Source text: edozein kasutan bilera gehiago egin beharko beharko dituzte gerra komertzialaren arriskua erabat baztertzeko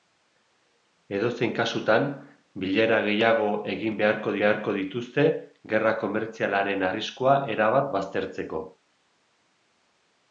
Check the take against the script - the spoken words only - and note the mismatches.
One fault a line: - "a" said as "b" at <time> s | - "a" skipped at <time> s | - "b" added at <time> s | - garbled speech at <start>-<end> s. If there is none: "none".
none